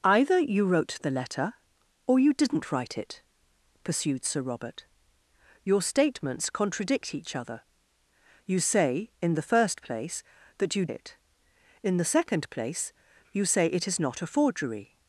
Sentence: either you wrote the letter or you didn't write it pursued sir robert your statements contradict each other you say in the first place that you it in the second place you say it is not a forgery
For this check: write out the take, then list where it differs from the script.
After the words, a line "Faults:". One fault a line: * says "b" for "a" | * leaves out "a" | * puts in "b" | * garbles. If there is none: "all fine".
either you wrote the letter or you didn't write it pursued sir robert your statements contradict each other you say in the first place that you it in the second place you say it is not a forgery
Faults:
all fine